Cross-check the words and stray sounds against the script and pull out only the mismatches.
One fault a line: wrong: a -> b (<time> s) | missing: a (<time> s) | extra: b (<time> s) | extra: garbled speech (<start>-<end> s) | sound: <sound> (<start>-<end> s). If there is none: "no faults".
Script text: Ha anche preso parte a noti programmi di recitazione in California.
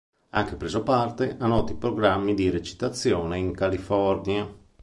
no faults